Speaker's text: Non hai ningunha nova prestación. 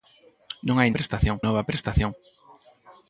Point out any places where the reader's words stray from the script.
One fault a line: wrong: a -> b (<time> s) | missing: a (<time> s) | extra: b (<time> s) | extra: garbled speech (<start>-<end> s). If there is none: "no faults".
wrong: ningunha -> prestación (1.0 s)